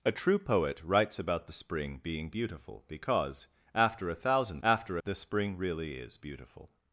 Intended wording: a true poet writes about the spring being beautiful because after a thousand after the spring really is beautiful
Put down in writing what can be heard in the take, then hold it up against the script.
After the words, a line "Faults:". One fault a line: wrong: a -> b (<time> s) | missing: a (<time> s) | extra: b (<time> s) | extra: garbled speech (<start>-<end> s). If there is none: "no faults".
a true poet writes about the spring being beautiful because after a thousand after the spring really is beautiful
Faults:
no faults